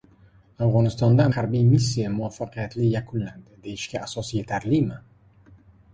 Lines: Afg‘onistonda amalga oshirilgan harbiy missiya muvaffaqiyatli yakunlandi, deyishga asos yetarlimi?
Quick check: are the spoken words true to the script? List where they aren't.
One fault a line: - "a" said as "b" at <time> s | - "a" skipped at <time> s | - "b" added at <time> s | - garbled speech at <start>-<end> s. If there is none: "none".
- "amalga oshirilgan" skipped at 1.3 s